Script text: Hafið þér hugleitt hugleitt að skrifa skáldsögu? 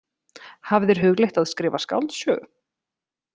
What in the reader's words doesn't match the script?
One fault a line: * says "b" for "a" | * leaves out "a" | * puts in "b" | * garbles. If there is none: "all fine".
* leaves out "hugleitt"